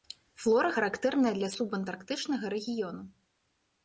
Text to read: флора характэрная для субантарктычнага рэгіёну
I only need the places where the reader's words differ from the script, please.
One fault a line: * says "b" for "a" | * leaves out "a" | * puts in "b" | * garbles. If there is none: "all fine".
all fine